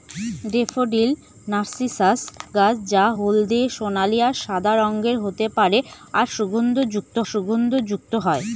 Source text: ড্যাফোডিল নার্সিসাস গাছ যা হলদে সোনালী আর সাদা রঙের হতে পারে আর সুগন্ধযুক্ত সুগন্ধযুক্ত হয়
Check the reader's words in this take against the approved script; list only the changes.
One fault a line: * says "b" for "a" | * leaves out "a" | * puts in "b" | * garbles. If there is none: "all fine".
all fine